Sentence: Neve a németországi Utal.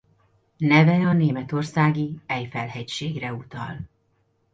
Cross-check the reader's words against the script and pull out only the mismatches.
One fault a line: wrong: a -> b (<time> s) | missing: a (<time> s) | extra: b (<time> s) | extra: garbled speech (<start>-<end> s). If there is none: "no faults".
extra: Eifel hegységre (2.3 s)